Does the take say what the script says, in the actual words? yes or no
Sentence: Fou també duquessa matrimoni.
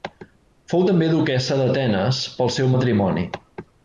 no